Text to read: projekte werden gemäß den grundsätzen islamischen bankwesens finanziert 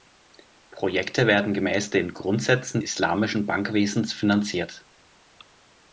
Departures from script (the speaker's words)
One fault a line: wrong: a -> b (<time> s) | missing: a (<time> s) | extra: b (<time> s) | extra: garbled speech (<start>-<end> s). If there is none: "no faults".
no faults